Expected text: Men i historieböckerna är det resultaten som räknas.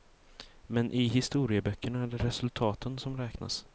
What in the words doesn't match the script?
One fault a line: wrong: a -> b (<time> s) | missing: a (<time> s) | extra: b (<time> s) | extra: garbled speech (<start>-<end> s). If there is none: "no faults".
no faults